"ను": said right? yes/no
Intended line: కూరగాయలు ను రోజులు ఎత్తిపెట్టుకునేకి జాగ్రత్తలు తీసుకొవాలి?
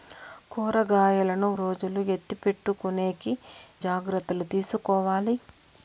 yes